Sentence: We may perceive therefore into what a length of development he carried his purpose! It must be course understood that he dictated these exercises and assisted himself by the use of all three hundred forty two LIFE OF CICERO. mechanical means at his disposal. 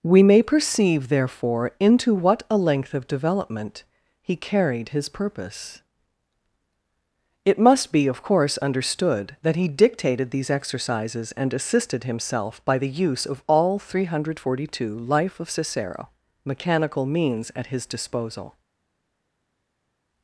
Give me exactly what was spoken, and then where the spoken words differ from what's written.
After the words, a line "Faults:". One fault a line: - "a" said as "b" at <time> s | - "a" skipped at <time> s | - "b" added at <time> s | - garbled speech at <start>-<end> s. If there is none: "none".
We may perceive therefore into what a length of development he carried his purpose! It must be of course understood that he dictated these exercises and assisted himself by the use of all three hundred forty two LIFE OF CICERO. mechanical means at his disposal.
Faults:
- "of" added at 8.1 s